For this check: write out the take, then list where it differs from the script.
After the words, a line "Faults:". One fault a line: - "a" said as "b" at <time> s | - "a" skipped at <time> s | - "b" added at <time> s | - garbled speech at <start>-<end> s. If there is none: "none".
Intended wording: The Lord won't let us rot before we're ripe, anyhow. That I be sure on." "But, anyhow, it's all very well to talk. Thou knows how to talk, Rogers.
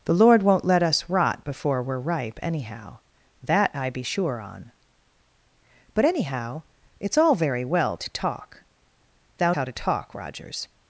The Lord won't let us rot before we're ripe, anyhow. That I be sure on." "But, anyhow, it's all very well to talk. Thou how to talk, Rogers.
Faults:
- "knows" skipped at 9.5 s